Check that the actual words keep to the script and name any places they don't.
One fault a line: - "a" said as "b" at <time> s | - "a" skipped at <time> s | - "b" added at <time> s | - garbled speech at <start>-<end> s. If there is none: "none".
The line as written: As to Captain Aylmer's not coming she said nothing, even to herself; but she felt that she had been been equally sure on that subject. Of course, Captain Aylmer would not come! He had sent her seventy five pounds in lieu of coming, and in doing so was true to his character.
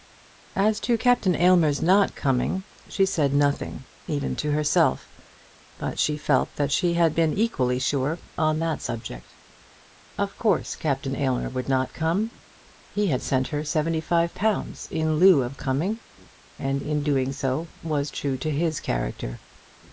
- "been" skipped at 7.3 s